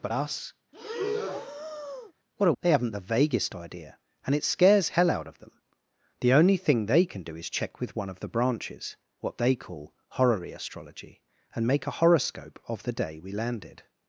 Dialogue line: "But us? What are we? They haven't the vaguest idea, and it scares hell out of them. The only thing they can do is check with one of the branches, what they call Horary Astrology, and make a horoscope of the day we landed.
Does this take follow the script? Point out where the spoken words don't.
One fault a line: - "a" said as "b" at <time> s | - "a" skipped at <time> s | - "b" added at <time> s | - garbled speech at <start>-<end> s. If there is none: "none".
- "we" skipped at 2.5 s